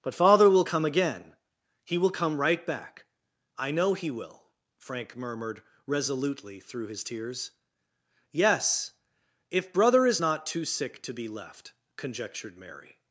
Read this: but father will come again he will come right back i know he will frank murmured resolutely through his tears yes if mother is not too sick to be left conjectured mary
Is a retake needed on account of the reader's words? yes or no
yes